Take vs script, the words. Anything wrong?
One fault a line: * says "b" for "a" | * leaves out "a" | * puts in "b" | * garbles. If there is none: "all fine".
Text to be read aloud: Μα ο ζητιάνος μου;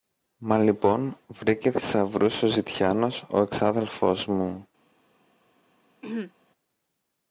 * puts in "λοιπόν βρήκε θησαυρούς"
* puts in "ο εξάδελφος"